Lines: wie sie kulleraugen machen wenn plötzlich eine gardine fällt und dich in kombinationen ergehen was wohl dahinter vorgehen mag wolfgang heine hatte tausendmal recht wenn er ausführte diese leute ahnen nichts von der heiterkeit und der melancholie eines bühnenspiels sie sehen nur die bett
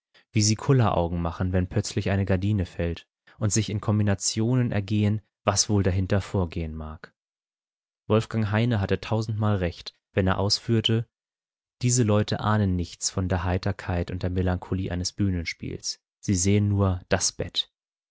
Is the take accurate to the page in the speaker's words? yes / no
no